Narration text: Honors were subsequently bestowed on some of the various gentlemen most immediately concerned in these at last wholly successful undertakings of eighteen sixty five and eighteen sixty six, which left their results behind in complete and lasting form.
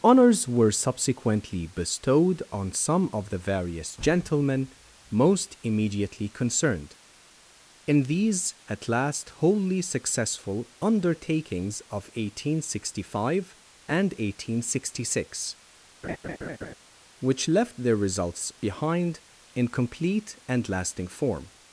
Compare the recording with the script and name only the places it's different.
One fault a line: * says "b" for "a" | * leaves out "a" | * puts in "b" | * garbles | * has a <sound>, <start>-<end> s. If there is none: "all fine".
* has a laugh, 16.0-16.7 s